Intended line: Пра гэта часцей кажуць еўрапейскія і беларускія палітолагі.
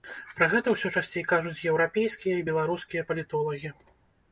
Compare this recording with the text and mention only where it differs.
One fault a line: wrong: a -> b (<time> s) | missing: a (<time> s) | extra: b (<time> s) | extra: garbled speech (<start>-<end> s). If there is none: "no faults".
extra: ўсё (0.8 s)